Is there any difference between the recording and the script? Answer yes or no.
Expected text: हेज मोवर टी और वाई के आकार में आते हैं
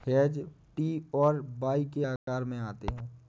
yes